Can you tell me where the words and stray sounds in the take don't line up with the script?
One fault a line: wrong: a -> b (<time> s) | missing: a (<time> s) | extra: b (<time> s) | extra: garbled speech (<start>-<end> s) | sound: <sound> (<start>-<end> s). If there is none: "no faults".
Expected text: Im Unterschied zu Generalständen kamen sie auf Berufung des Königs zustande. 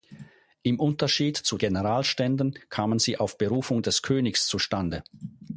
no faults